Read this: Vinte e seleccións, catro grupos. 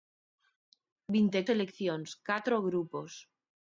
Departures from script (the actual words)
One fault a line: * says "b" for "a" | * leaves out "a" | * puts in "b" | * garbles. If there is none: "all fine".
all fine